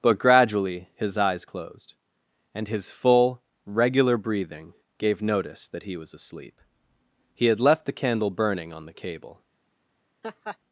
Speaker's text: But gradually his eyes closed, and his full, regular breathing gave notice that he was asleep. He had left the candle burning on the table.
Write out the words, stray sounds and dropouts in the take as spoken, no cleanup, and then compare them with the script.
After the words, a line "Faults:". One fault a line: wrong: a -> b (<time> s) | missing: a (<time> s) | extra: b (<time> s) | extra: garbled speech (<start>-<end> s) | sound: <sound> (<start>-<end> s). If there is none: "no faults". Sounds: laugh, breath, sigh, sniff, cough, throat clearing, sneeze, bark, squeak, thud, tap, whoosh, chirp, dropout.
But gradually his eyes closed, and his full, regular breathing gave notice that he was asleep. He had left the candle burning on the cable.
Faults:
wrong: table -> cable (8.9 s)
sound: laugh (10.2-10.6 s)